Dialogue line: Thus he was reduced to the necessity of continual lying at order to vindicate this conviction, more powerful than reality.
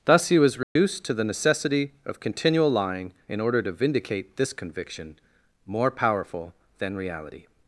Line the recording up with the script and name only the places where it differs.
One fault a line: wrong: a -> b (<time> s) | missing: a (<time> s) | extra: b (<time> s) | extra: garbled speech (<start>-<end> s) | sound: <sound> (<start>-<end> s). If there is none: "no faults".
sound: dropout (0.6-0.8 s)
wrong: at -> in (3.3 s)